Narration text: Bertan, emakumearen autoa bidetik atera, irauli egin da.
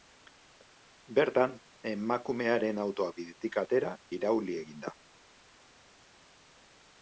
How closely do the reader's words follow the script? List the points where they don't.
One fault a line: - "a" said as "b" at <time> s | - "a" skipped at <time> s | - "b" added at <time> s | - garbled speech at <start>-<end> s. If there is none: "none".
none